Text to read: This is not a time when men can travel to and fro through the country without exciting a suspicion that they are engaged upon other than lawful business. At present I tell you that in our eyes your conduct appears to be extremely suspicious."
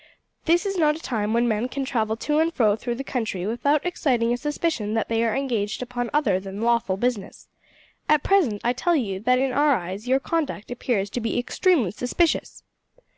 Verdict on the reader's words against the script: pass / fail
pass